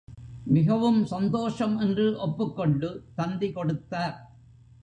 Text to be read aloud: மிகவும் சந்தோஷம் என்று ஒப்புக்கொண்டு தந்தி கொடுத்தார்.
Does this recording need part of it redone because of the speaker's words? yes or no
no